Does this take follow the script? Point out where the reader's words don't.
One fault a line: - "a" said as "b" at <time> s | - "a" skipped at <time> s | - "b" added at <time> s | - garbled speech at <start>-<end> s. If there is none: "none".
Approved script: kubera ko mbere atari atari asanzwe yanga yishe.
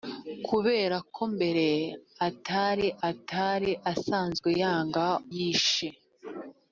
none